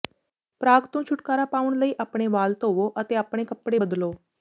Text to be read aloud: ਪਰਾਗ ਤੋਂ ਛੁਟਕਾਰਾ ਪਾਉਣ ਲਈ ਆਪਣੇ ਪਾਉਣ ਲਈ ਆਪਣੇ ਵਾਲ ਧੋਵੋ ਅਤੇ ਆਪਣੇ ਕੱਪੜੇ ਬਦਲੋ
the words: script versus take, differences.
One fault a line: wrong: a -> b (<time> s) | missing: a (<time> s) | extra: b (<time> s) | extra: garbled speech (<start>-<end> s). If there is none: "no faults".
missing: ਪਾਉਣ ਲਈ ਆਪਣੇ (2.3 s)